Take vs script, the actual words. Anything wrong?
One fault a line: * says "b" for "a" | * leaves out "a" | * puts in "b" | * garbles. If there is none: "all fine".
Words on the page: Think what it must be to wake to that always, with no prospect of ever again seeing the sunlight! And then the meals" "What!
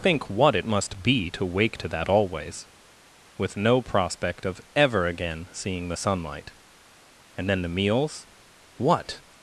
all fine